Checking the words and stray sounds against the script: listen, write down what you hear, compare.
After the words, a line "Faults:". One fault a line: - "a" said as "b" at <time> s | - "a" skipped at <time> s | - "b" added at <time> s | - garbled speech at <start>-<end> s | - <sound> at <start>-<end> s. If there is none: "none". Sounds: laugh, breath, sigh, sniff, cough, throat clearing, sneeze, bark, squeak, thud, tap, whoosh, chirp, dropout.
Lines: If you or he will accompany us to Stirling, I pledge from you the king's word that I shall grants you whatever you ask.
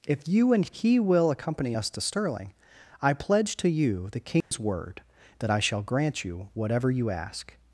If you and he will accompany us to Stirling, I pledge to you the king's word that I shall grant you whatever you ask.
Faults:
- "or" said as "and" at 0.5 s
- "from" said as "to" at 3.6 s
- dropout at 4.4-4.5 s
- "grants" said as "grant" at 5.8 s